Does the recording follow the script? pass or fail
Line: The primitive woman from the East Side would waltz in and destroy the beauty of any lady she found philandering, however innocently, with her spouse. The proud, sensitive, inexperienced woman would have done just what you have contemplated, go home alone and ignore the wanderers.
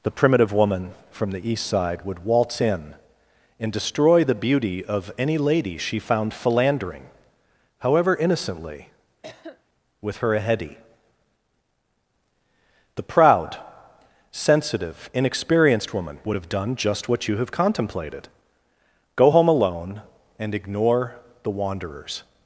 fail